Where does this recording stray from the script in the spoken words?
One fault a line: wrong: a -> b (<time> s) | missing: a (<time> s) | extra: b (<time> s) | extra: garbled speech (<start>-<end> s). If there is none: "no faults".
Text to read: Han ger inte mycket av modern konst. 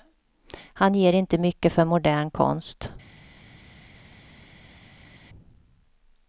wrong: av -> för (1.7 s)